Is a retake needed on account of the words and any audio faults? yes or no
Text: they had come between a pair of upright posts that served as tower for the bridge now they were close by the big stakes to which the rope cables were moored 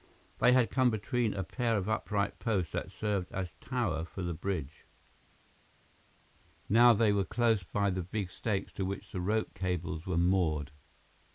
no